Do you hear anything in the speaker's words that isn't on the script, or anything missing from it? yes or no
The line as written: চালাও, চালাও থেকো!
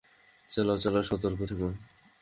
yes